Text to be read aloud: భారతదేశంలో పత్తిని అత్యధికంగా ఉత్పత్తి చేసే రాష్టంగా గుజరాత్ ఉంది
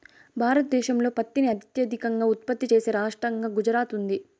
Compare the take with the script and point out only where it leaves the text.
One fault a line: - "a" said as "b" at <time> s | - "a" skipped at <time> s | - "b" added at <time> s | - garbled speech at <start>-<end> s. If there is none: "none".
none